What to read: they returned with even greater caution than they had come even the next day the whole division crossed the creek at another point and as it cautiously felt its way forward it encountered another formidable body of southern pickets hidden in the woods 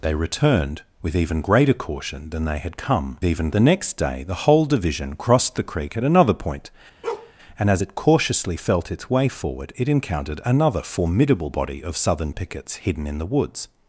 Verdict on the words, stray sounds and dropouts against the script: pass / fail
fail